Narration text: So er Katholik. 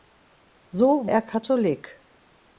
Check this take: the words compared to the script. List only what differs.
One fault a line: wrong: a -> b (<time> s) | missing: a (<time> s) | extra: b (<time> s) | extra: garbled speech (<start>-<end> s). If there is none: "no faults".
no faults